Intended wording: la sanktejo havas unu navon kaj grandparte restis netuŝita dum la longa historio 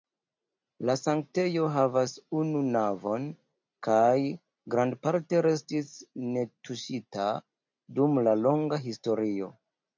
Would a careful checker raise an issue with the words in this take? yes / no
no